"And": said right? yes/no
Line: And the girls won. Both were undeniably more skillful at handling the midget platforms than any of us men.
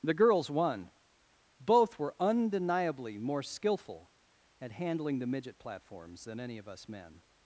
no